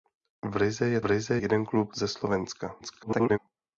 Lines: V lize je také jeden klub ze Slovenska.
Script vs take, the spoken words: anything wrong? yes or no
yes